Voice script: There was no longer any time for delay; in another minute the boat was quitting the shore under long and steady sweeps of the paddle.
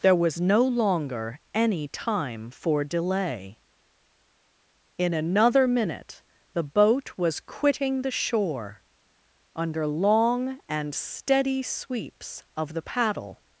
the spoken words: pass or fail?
pass